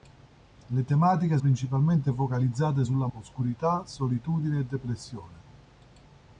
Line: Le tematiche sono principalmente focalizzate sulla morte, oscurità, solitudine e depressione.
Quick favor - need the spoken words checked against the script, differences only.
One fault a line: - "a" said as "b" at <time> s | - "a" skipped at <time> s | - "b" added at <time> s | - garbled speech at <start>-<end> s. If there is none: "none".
- "sono" skipped at 1.4 s
- "morte" skipped at 3.1 s